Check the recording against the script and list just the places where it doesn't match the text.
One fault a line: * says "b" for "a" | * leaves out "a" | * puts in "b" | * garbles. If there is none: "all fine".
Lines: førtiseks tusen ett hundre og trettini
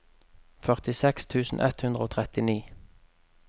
all fine